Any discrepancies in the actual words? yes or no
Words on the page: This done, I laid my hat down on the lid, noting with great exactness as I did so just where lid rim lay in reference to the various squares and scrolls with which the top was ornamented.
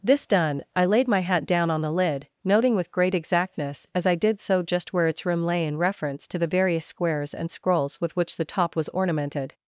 yes